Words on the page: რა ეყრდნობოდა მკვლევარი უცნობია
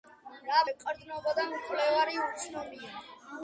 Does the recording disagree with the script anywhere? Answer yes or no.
no